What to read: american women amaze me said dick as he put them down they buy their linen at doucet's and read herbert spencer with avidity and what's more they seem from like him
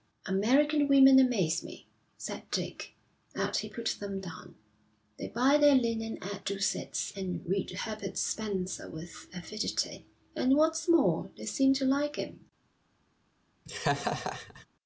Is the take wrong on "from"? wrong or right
wrong